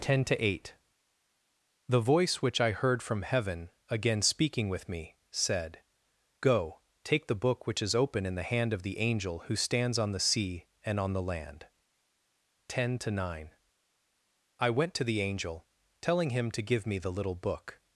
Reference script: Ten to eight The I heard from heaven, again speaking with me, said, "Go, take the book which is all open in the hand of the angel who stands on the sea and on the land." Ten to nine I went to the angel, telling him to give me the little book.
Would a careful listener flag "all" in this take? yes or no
yes